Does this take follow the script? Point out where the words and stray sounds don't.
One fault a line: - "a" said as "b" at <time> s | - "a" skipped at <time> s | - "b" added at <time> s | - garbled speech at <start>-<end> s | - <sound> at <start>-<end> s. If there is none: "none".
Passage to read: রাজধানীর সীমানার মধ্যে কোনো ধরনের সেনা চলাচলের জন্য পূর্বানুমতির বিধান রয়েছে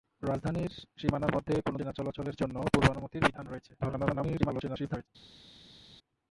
- "ধরনের" skipped at 1.8 s
- garbled speech at 3.8-5.1 s